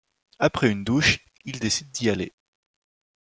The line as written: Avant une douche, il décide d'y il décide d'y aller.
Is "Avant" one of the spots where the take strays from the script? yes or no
yes